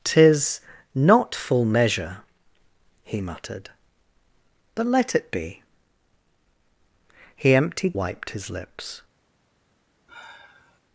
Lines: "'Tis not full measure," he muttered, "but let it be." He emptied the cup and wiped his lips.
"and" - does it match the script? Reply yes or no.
no